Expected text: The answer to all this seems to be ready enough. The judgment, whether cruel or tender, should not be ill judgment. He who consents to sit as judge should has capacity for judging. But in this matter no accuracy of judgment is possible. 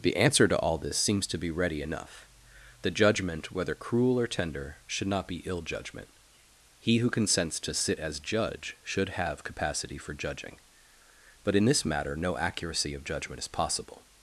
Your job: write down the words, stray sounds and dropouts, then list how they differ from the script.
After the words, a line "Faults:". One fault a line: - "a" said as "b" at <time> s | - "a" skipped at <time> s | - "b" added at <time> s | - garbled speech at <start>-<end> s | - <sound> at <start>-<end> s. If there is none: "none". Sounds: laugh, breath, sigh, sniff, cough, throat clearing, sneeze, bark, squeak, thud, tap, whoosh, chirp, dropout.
The answer to all this seems to be ready enough. The judgment, whether cruel or tender, should not be ill judgment. He who consents to sit as judge should have capacity for judging. But in this matter no accuracy of judgment is possible.
Faults:
- "has" said as "have" at 9.1 s